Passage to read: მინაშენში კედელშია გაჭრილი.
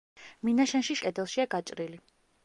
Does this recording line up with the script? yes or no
yes